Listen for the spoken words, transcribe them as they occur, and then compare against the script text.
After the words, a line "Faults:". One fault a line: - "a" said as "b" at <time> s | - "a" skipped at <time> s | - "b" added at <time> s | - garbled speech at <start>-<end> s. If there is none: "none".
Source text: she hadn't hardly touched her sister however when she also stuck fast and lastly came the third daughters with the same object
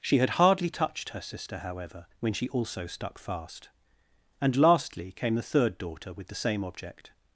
she had hardly touched her sister however when she also stuck fast and lastly came the third daughter with the same object
Faults:
- "hadn't" said as "had" at 0.2 s
- "daughters" said as "daughter" at 5.8 s